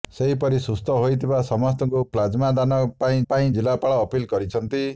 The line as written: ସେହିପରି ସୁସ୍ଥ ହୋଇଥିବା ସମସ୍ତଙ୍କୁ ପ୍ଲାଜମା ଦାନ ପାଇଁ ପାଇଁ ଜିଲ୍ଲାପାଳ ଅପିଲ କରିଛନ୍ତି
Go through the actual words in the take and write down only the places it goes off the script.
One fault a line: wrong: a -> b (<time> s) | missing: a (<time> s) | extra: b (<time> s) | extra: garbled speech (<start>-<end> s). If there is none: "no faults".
no faults